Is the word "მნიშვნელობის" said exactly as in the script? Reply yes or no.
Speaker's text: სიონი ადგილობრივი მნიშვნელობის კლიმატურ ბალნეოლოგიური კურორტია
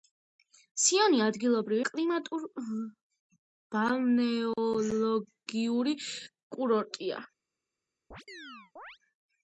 no